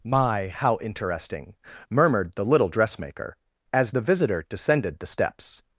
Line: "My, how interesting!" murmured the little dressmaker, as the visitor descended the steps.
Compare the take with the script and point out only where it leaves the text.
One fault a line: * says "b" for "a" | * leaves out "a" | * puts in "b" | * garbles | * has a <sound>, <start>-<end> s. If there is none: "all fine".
all fine